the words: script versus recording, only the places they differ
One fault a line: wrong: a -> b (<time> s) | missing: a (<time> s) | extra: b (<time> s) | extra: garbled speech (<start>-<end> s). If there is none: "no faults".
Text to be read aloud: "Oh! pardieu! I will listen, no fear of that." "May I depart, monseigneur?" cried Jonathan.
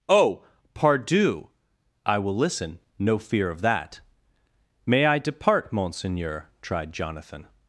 wrong: cried -> tried (6.6 s)